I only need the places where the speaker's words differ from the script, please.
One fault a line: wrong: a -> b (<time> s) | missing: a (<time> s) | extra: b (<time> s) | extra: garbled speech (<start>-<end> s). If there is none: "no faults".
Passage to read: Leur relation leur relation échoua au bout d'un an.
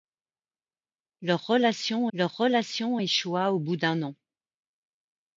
no faults